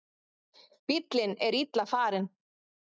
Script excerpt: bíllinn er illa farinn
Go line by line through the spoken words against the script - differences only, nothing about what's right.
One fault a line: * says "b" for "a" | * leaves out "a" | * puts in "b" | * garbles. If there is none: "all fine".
all fine